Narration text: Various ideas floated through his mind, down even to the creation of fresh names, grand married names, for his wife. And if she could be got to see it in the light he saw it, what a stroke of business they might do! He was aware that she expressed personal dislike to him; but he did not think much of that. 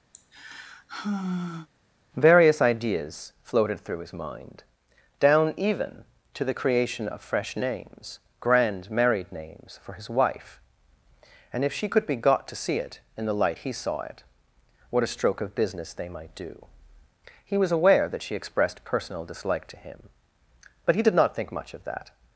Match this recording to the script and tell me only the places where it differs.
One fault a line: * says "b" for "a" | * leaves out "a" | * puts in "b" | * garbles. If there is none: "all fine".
all fine